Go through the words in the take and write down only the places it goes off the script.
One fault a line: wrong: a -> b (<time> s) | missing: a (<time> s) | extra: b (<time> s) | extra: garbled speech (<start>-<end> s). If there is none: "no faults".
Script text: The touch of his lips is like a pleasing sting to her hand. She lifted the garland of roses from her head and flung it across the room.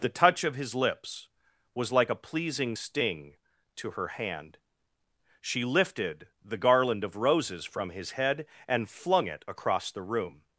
wrong: is -> was (1.8 s)
wrong: her -> his (7.9 s)